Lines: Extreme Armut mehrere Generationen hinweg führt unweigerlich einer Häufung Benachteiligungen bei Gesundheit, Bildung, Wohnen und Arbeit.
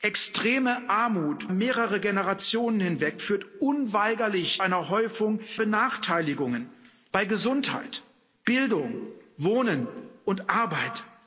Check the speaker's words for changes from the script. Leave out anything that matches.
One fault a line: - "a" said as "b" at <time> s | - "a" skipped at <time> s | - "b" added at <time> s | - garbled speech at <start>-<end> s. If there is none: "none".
none